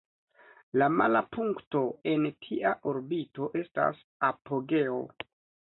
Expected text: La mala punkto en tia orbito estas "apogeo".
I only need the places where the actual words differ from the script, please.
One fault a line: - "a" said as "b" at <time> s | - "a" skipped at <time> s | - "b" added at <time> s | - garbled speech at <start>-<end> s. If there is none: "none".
none